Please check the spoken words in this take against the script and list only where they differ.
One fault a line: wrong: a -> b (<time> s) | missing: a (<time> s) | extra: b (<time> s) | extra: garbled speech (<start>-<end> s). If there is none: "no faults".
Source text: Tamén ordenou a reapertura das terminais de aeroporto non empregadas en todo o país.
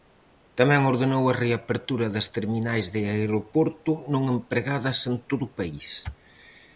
no faults